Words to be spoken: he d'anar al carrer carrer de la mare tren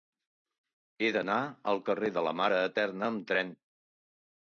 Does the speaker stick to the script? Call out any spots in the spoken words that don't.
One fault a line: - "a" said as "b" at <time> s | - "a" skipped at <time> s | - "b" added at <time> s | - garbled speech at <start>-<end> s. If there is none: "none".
- "carrer" skipped at 2.1 s
- "eterna amb" added at 2.7 s